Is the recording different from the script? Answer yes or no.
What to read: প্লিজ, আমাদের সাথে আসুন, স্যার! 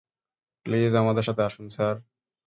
no